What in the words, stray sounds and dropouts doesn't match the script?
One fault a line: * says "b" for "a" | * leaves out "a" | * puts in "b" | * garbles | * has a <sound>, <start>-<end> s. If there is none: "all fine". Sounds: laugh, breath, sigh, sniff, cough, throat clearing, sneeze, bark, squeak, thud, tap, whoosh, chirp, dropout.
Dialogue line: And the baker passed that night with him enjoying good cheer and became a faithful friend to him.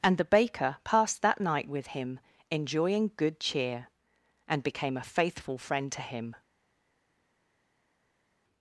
all fine